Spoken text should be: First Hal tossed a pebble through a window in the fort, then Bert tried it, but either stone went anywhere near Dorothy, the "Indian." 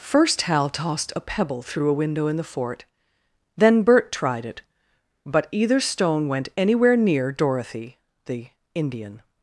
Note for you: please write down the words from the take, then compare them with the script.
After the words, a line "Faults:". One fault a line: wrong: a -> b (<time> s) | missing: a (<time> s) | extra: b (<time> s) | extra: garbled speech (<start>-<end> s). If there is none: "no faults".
First Hal tossed a pebble through a window in the fort, then Bert tried it, but either stone went anywhere near Dorothy, the "Indian."
Faults:
no faults